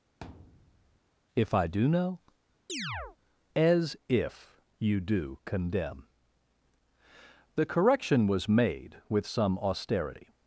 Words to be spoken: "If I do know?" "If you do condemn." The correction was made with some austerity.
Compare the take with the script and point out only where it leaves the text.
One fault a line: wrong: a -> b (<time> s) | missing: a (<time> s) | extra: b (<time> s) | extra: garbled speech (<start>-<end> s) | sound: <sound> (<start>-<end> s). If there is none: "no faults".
sound: thud (0.2-1.0 s)
sound: chirp (2.7-3.2 s)
extra: as (3.5 s)